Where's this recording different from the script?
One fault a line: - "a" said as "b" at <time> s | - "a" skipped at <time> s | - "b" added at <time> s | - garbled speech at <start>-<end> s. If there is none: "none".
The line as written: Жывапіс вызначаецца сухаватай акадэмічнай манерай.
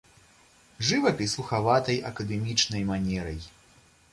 - "вызначаецца" skipped at 1.4 s